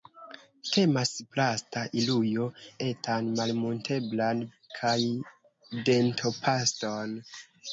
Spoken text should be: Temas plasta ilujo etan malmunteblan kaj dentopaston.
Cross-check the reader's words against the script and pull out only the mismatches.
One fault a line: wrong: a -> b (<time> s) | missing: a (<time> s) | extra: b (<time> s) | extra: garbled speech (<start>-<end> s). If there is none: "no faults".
no faults